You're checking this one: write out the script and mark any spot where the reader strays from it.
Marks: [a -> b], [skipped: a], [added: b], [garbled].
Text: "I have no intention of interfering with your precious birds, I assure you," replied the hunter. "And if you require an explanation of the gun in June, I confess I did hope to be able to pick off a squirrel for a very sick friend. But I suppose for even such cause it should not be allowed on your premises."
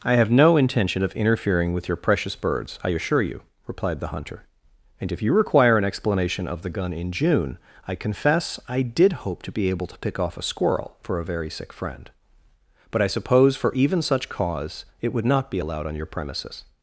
"I have no intention of interfering with your precious birds, I assure you," replied the hunter. "And if you require an explanation of the gun in June, I confess I did hope to be able to pick off a squirrel for a very sick friend. But I suppose for even such cause it [should -> would] not be allowed on your premises."